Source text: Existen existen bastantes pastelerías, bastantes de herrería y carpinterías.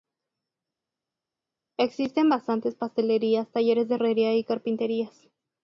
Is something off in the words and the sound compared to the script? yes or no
yes